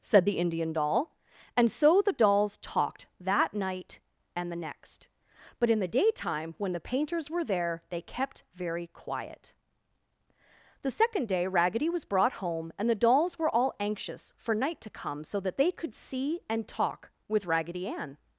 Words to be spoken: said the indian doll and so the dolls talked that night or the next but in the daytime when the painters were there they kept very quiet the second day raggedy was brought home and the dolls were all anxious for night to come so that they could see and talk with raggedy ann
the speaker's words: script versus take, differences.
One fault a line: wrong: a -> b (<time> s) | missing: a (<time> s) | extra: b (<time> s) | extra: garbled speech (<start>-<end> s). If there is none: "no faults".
wrong: or -> and (4.4 s)